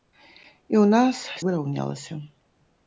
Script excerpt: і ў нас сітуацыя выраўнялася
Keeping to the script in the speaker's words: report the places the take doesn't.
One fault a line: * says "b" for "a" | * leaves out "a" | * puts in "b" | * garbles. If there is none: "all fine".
* leaves out "сітуацыя"